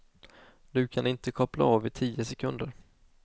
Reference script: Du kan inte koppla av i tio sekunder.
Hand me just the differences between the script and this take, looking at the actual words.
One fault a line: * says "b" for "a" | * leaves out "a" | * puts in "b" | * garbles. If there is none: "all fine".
all fine